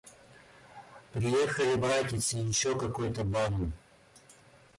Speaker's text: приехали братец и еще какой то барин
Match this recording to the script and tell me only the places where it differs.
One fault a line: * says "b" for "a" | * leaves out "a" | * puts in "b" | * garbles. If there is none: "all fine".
all fine